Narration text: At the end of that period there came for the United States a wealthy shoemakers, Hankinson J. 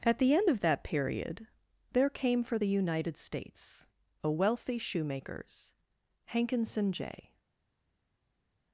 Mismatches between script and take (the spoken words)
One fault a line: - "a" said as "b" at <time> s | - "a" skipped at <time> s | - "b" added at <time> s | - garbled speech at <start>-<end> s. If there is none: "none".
none